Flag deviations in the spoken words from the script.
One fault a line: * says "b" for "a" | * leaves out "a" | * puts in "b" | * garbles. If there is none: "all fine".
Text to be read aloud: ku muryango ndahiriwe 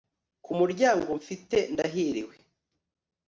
* puts in "mfite"